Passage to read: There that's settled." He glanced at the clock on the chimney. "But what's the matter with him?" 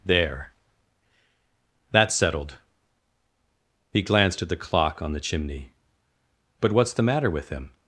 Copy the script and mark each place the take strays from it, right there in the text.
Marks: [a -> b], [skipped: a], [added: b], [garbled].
There that's settled." He glanced at the clock on the chimney. "But what's the matter with him?"